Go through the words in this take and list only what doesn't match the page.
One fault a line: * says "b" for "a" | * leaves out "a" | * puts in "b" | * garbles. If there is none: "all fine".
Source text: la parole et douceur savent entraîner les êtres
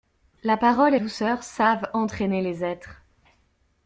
all fine